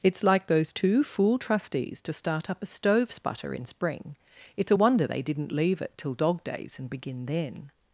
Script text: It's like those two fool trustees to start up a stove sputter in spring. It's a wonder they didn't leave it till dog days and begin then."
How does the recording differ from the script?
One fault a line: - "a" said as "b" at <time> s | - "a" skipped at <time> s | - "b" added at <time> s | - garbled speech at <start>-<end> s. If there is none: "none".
none